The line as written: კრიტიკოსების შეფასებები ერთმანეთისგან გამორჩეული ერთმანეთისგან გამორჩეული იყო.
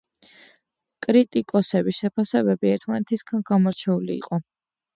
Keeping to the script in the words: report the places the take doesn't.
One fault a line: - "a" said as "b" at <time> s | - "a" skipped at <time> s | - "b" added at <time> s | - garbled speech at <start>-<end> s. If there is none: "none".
- "ერთმანეთისგან გამორჩეული" skipped at 4.2 s